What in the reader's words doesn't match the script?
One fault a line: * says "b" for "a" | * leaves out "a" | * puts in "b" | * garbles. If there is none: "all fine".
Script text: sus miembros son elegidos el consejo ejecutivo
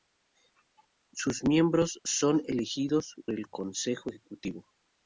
all fine